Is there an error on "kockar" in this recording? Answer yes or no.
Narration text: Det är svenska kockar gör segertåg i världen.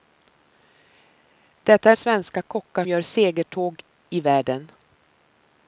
no